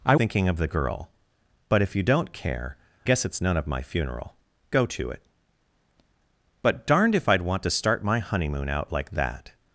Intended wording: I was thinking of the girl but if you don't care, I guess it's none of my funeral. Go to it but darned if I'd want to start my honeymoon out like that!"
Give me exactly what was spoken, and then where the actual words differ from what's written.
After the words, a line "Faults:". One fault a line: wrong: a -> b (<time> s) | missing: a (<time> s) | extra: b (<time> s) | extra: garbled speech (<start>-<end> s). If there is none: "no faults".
I thinking of the girl but if you don't care, guess it's none of my funeral. Go to it but darned if I'd want to start my honeymoon out like that!"
Faults:
missing: was (0.1 s)
missing: I (2.8 s)